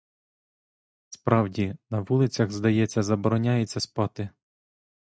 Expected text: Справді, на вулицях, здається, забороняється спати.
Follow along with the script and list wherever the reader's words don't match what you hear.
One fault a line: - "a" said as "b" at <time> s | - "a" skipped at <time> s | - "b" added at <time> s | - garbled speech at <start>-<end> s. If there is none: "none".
none